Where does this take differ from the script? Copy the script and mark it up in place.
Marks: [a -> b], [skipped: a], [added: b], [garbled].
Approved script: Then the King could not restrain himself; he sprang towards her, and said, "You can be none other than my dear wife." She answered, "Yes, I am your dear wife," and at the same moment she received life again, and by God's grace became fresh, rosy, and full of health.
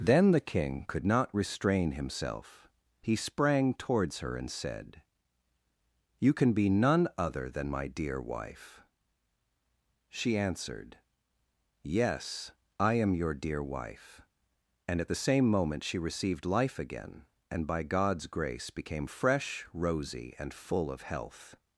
Then the King could not restrain himself; he sprang towards her, and said, "You can be none other than my dear wife." She answered, "Yes, I am your dear wife," and at the same moment she received life again, and by God's grace became fresh, rosy, and full of health.